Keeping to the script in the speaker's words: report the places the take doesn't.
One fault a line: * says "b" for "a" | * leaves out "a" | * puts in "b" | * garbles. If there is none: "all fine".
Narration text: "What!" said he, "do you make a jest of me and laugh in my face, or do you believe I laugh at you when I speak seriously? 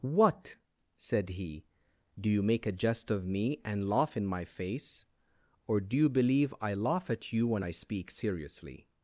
all fine